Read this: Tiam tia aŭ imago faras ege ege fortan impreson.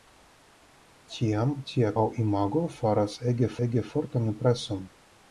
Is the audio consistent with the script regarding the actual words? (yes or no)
yes